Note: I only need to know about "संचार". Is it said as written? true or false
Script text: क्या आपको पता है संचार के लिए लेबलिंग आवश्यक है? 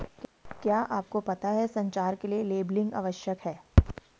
true